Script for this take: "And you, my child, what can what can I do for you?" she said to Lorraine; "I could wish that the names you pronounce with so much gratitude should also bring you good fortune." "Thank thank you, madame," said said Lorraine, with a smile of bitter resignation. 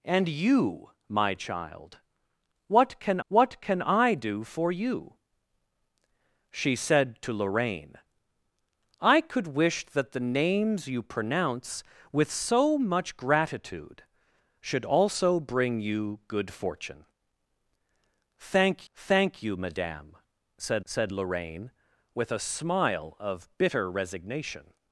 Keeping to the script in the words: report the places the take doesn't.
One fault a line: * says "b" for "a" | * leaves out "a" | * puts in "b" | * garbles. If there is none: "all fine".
all fine